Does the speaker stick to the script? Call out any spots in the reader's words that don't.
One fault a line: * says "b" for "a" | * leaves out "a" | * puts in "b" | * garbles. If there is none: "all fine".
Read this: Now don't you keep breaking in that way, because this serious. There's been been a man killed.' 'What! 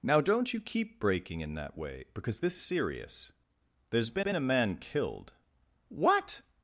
all fine